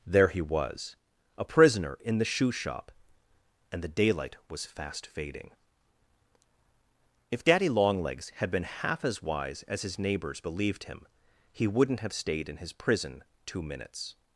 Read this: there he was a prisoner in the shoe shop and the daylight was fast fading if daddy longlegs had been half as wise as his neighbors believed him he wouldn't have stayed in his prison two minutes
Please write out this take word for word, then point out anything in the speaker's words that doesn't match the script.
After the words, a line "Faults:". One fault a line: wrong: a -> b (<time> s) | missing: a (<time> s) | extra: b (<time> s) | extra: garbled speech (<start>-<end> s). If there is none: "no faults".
there he was a prisoner in the shoe shop and the daylight was fast fading if daddy longlegs had been half as wise as his neighbors believed him he wouldn't have stayed in his prison two minutes
Faults:
no faults